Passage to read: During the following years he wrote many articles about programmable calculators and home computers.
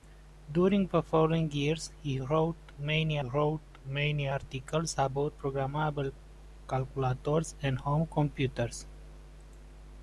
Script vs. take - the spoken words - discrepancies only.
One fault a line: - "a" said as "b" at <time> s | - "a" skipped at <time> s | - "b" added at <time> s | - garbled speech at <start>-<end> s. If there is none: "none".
- "wrote many" added at 3.2 s